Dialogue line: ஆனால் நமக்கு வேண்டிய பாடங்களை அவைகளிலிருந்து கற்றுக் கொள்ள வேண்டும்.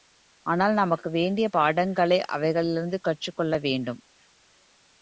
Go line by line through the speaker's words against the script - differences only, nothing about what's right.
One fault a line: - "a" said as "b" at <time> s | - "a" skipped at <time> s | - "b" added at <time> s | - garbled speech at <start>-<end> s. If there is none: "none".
none